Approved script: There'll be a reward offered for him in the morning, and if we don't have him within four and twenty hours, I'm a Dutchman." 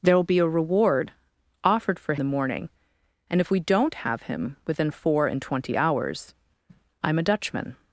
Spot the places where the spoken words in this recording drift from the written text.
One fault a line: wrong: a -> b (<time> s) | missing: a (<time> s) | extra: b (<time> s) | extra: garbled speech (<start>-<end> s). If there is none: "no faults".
missing: him in (2.1 s)